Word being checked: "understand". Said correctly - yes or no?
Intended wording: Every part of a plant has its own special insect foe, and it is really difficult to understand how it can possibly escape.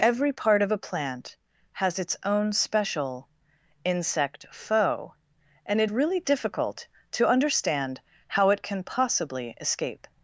yes